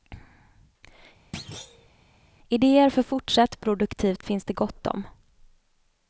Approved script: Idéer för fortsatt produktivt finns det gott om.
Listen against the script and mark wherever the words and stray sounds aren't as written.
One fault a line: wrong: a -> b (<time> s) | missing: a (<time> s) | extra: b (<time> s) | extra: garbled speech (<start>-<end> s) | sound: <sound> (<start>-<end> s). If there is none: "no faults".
sound: thud (1.3-1.9 s)